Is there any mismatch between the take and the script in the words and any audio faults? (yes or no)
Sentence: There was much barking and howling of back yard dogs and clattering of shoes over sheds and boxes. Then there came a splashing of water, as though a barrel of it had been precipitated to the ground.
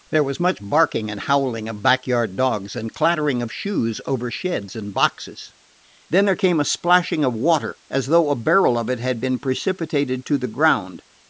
no